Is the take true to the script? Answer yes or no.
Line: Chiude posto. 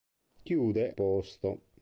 yes